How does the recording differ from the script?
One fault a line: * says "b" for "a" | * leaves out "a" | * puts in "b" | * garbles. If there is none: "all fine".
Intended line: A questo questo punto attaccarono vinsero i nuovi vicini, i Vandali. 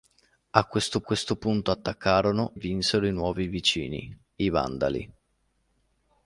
all fine